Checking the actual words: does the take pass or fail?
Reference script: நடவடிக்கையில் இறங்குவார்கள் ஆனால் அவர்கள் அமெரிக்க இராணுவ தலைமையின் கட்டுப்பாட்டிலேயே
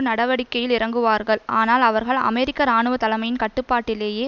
pass